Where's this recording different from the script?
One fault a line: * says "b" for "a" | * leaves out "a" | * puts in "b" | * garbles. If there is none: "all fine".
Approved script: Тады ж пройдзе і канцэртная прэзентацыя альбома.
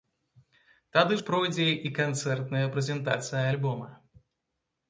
all fine